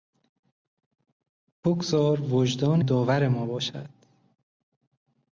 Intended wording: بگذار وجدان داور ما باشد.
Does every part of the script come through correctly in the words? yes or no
yes